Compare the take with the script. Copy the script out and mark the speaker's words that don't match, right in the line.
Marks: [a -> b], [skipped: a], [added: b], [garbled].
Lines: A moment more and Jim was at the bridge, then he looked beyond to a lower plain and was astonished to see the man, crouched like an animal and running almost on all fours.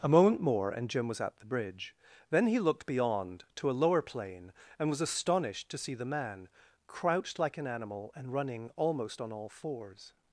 A moment more and Jim was at the bridge, then he looked beyond to a lower plain and was astonished to see the man, crouched like an animal and running almost on all fours.